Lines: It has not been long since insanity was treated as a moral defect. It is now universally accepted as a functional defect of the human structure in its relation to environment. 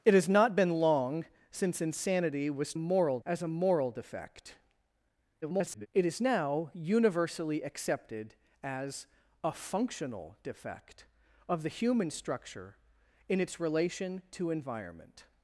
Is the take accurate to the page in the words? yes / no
no